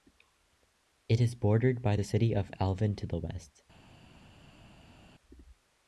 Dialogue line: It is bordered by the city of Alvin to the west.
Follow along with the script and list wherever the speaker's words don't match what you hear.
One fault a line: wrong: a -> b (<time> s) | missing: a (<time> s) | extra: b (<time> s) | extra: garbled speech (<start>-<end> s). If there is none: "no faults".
no faults